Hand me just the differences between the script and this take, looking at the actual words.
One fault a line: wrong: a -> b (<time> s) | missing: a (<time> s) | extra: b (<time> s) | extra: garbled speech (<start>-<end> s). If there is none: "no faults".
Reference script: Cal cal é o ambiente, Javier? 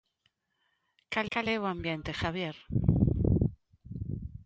no faults